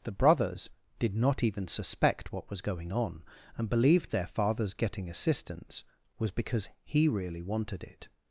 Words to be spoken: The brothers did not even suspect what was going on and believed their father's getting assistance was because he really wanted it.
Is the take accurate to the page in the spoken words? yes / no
yes